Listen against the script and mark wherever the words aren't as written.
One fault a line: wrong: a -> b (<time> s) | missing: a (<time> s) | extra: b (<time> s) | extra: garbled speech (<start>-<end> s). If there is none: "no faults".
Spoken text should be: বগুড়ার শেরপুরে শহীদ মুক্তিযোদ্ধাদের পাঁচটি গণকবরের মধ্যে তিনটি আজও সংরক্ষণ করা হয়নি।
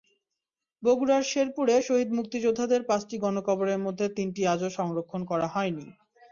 no faults